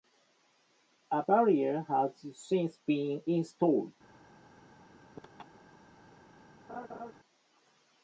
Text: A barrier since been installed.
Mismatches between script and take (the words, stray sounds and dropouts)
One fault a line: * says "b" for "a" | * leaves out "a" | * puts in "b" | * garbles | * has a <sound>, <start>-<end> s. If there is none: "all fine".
* puts in "has"
* has a laugh, 5.1-5.8 s
* has a laugh, 6.7-7.1 s